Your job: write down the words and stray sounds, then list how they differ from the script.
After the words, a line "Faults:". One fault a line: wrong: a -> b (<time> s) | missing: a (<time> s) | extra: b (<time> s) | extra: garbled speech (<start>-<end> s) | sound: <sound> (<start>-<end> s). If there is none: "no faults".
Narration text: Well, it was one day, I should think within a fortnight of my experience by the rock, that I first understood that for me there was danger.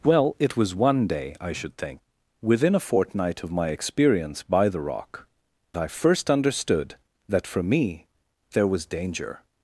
Well, it was one day, I should think within a fortnight of my experience by the rock, I first understood that for me there was danger.
Faults:
missing: that (5.3 s)